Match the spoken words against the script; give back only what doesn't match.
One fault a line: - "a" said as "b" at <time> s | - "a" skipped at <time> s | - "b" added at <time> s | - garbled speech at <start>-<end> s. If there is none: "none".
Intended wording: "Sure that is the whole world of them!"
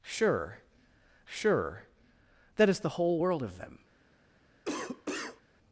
- "sure" added at 1.2 s